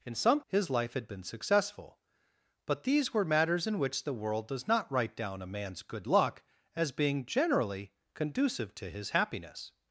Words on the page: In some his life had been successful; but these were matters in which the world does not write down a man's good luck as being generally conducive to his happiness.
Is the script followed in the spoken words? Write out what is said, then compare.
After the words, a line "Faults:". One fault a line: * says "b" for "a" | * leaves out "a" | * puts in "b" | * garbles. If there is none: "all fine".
In some his life had been successful; but these were matters in which the world does not write down a man's good luck as being generally conducive to his happiness.
Faults:
all fine